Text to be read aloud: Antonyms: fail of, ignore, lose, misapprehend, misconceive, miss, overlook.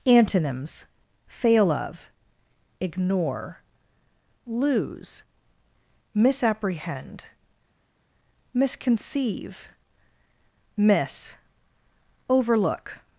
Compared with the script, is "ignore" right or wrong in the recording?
right